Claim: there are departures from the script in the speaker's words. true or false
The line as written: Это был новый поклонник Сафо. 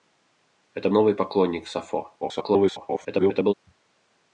true